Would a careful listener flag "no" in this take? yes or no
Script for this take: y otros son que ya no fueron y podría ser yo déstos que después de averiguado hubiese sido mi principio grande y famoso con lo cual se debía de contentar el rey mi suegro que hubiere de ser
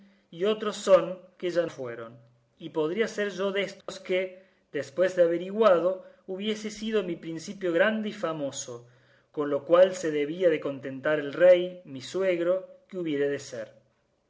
yes